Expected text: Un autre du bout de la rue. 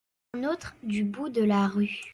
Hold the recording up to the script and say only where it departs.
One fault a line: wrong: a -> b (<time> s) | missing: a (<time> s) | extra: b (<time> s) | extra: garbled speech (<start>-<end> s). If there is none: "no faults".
no faults